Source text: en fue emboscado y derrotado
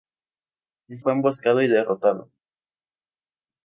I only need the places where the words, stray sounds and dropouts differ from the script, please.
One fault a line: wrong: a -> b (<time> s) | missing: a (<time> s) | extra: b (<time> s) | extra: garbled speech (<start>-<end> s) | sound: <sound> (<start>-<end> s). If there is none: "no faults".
no faults